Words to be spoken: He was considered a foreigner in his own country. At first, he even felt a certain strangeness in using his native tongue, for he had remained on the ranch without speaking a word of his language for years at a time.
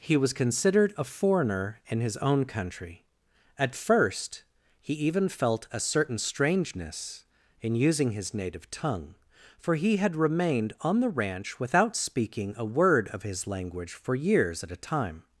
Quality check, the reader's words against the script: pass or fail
pass